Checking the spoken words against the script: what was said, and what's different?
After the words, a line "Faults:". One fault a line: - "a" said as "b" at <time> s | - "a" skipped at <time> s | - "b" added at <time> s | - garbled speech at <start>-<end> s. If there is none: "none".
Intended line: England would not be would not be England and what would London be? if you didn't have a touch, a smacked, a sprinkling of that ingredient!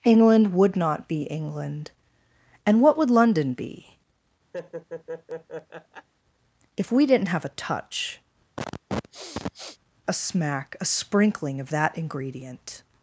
England would not be England and what would London be? if we didn't have a touch, a smack, a sprinkling of that ingredient!
Faults:
- "would not be" skipped at 1.2 s
- "you" said as "we" at 6.9 s
- "smacked" said as "smack" at 10.1 s